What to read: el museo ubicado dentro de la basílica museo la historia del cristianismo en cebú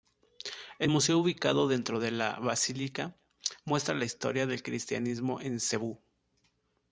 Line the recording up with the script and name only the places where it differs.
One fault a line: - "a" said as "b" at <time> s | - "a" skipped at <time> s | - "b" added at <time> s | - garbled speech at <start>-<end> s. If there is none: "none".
- "museo" said as "muestra" at 3.6 s